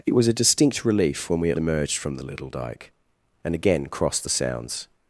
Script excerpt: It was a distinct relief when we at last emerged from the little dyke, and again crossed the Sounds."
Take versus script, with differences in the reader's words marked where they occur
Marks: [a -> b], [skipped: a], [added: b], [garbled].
It was a distinct relief when we at [skipped: last] emerged from the little dyke, and again crossed the Sounds."